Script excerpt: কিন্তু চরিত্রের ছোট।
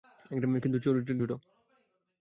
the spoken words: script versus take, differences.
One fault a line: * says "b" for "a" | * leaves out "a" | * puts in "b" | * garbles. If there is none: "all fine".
all fine